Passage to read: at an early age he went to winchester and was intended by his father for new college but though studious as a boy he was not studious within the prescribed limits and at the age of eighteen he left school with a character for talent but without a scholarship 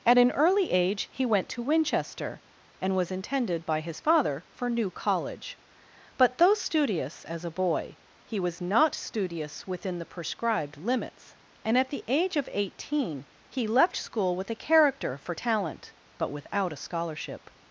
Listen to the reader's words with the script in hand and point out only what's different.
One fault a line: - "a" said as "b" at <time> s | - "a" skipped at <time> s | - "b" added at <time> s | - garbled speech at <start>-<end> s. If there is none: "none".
none